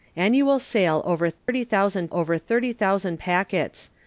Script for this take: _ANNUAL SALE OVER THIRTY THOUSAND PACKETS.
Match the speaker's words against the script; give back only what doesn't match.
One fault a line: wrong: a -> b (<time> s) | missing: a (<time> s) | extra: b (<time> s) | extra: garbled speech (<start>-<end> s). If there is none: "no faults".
extra: OVER THIRTY THOUSAND (2.1 s)